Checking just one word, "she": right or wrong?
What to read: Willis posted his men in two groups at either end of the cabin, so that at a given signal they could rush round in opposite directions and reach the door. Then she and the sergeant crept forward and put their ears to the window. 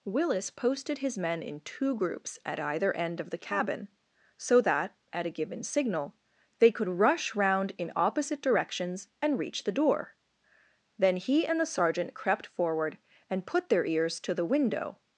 wrong